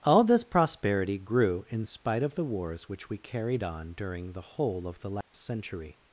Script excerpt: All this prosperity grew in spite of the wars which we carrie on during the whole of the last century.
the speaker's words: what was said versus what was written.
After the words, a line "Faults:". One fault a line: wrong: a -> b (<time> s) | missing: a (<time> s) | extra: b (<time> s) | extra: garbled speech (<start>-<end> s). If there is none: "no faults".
All this prosperity grew in spite of the wars which we carried on during the whole of the last century.
Faults:
wrong: carrie -> carried (3.2 s)